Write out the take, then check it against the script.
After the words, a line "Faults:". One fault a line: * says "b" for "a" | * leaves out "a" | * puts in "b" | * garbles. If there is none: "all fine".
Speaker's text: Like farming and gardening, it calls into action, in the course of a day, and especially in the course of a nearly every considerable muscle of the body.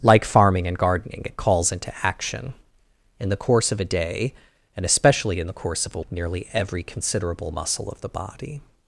Like farming and gardening, it calls into action, in the course of a day, and especially in the course of a nearly every considerable muscle of the body.
Faults:
all fine